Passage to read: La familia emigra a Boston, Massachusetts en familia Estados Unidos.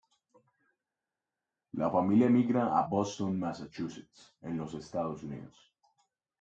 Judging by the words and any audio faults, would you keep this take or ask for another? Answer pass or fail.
fail